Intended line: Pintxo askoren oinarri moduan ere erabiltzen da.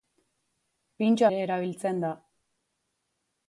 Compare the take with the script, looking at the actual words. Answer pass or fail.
fail